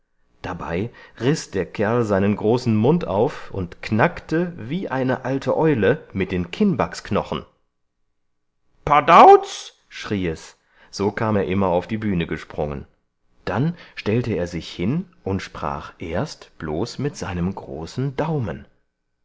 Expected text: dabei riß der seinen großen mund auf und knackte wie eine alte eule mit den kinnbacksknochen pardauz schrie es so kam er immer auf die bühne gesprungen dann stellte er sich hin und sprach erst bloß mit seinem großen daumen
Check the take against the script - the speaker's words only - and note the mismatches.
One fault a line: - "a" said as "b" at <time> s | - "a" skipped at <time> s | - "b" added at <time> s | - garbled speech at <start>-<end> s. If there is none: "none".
- "kerl" added at 1.7 s